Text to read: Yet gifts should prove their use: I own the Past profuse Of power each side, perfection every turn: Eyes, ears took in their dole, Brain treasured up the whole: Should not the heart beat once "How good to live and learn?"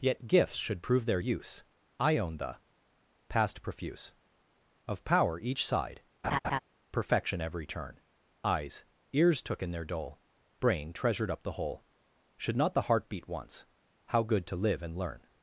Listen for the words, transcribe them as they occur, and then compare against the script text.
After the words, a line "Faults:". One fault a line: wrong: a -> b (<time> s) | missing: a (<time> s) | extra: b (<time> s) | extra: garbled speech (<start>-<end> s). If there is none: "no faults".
Yet gifts should prove their use: I own the Past profuse Of power each side, perfection every turn: Eyes, ears took in their dole, Brain treasured up the whole: Should not the heart beat once "How good to live and learn?"
Faults:
no faults